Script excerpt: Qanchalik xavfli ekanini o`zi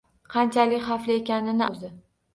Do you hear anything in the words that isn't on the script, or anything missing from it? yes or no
no